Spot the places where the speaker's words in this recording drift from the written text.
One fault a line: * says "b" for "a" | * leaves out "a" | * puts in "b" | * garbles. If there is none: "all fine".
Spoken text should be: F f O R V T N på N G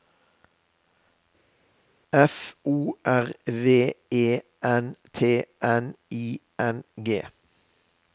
* leaves out "f"
* puts in "E N"
* says "I" for "på"